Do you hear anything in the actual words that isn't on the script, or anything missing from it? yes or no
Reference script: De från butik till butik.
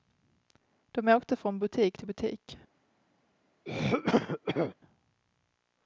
yes